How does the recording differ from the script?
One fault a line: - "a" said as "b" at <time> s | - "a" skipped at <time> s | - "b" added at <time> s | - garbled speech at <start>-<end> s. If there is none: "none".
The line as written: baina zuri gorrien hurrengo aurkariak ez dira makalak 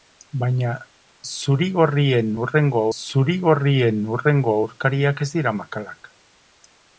- "zuri gorrien hurrengo" added at 3.0 s